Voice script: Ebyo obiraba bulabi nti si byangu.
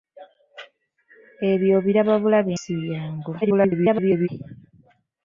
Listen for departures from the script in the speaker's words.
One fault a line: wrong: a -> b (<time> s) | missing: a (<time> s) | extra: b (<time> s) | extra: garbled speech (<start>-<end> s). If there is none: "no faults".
missing: nti (2.5 s)
extra: garbled speech (3.4-4.3 s)